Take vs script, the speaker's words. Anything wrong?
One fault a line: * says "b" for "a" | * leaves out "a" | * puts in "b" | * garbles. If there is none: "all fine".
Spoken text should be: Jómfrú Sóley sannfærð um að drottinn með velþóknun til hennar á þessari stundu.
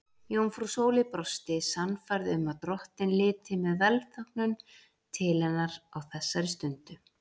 * puts in "brosti"
* puts in "liti"